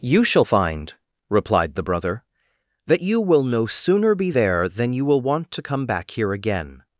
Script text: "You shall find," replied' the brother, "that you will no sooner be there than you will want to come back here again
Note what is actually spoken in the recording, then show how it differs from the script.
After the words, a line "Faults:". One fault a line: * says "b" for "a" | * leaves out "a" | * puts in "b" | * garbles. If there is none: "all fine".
"You shall find," replied' the brother, "that you will no sooner be there than you will want to come back here again
Faults:
all fine